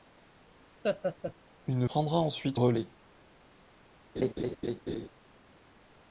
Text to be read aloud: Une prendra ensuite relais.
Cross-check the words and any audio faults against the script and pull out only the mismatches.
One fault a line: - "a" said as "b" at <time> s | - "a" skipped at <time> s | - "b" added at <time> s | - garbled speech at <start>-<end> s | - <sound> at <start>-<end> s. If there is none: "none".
- laugh at 0.8-1.3 s
- laugh at 4.2-5.1 s